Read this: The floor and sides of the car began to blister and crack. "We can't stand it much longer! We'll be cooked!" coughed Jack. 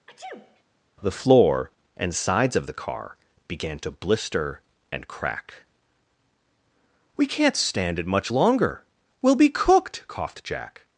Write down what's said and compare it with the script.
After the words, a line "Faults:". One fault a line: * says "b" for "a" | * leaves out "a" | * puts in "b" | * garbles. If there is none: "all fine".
The floor and sides of the car began to blister and crack. "We can't stand it much longer! We'll be cooked!" coughed Jack.
Faults:
all fine